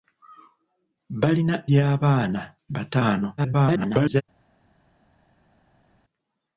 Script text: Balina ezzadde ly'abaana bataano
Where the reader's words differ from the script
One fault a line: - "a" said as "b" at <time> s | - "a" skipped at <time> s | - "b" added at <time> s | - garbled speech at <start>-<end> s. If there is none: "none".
- "ezzadde" skipped at 1.6 s
- garbled speech at 3.4-4.2 s